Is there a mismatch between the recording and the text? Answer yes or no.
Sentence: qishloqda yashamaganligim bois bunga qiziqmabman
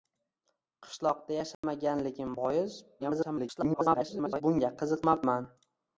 yes